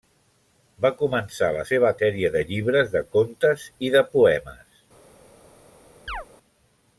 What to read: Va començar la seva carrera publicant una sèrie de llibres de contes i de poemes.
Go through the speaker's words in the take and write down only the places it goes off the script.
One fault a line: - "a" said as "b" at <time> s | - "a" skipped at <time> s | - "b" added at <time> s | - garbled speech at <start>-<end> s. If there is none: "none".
- "carrera publicant una" skipped at 1.9 s